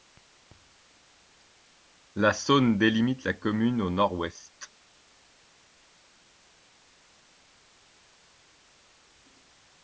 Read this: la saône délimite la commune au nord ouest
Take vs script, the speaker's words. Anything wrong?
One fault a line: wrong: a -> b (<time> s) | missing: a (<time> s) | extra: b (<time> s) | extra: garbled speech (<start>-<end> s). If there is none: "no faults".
no faults